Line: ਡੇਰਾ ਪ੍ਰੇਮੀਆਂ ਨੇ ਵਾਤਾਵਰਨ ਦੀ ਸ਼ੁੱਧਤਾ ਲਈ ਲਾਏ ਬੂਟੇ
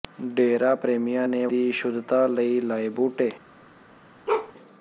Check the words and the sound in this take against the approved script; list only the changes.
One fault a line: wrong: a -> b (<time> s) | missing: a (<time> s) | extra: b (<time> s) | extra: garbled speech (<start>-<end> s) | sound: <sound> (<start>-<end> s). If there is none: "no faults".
missing: ਵਾਤਾਵਰਨ (1.5 s)
sound: bark (4.3-4.5 s)